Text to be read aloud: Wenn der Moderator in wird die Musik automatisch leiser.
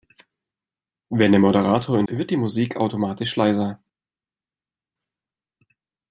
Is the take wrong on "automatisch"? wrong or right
right